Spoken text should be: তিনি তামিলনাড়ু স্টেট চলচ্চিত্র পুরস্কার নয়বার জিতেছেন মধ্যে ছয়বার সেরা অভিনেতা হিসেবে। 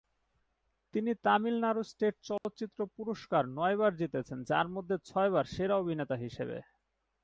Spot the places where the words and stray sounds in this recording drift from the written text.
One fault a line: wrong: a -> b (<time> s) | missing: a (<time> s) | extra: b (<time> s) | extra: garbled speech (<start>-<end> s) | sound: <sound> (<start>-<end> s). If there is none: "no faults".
sound: dropout (2.4-2.4 s)
extra: যার (4.4 s)